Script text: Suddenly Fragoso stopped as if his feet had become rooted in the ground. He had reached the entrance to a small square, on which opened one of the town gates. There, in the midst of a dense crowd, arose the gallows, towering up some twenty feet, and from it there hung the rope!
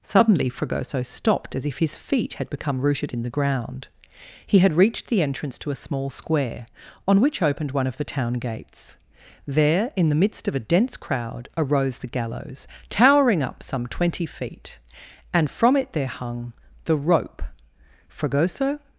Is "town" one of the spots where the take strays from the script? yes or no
no